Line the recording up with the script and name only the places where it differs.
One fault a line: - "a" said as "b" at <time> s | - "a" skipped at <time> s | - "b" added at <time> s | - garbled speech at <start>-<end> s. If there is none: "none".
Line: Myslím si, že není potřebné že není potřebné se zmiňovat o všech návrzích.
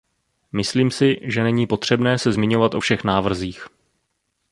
- "že není potřebné" skipped at 2.2 s